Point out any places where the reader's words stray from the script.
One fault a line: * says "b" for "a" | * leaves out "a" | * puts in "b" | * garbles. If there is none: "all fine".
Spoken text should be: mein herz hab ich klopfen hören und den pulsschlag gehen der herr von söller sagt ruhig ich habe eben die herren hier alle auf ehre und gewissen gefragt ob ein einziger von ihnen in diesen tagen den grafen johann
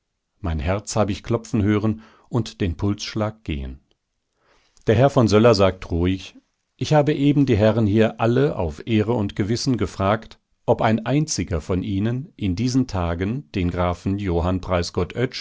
all fine